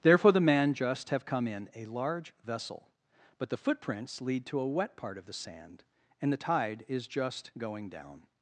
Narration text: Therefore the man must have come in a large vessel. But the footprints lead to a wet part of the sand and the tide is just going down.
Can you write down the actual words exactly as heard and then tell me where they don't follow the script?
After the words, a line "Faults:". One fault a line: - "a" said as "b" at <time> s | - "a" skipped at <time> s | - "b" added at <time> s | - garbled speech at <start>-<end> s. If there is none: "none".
Therefore the man just have come in a large vessel. But the footprints lead to a wet part of the sand and the tide is just going down.
Faults:
- "must" said as "just" at 0.7 s